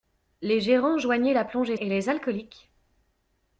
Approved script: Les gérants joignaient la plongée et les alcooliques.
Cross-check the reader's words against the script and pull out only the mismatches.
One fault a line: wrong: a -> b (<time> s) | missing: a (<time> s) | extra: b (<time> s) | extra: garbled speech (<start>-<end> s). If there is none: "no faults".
no faults